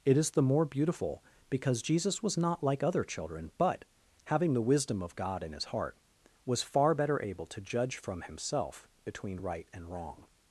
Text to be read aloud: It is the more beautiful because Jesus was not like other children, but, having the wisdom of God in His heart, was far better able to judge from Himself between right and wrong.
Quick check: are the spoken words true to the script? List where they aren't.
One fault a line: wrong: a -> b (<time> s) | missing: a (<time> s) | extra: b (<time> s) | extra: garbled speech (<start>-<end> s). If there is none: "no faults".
no faults